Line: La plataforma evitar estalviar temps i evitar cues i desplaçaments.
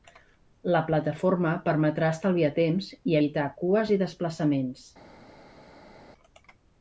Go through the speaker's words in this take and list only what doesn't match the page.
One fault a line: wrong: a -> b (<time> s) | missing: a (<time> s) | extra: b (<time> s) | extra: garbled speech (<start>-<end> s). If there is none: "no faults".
wrong: evitar -> permetrà (1.7 s)